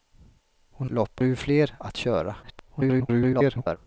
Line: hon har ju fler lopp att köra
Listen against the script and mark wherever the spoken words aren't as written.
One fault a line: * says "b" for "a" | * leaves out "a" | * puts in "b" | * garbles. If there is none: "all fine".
* says "lopp" for "har"
* leaves out "lopp"
* garbles